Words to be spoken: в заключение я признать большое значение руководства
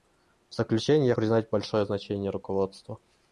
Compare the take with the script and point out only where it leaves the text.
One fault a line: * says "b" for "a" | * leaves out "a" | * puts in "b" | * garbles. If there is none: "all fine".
all fine